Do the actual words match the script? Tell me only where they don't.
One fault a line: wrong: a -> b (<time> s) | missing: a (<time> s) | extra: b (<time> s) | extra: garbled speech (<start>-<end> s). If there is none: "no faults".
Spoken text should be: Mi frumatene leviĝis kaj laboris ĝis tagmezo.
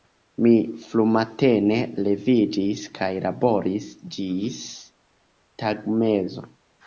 no faults